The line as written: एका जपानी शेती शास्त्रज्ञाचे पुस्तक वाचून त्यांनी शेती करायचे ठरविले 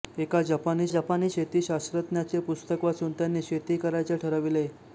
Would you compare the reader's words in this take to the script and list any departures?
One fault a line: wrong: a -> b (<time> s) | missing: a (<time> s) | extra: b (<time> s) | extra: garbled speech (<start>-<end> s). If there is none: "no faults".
extra: जपानी (0.9 s)